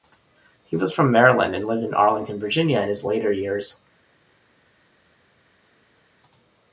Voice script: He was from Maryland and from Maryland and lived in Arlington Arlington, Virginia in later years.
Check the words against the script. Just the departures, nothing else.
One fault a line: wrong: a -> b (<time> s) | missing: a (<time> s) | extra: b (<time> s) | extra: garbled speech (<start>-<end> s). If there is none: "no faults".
missing: from Maryland and (1.7 s)
missing: Arlington (2.4 s)
extra: his (2.9 s)